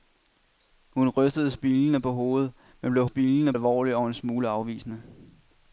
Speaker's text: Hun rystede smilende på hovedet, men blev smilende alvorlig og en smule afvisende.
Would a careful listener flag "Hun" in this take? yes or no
no